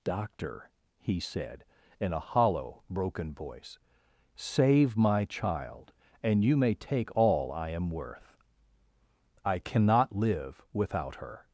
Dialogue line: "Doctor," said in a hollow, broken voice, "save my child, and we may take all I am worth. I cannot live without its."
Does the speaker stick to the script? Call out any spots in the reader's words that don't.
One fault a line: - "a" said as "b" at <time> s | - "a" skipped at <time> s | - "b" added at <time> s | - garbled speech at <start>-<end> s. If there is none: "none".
- "he" added at 1.0 s
- "we" said as "you" at 6.4 s
- "its" said as "her" at 11.2 s